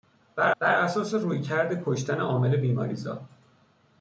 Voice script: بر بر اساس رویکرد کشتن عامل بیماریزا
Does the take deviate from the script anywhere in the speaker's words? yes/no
no